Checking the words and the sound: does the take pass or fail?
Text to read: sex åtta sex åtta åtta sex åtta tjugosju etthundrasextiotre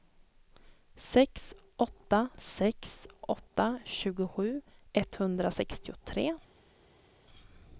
fail